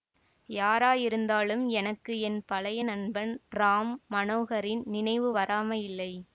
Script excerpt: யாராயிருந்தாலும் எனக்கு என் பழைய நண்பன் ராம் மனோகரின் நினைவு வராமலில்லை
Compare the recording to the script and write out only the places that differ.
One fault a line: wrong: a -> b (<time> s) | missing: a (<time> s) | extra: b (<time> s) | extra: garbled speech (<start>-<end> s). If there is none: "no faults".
no faults